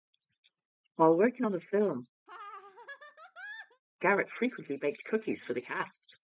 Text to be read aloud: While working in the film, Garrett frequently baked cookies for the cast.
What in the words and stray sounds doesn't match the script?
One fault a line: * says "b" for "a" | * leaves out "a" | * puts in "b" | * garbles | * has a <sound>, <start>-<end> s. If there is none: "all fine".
* says "on" for "in"
* has a laugh, 2.3-3.8 s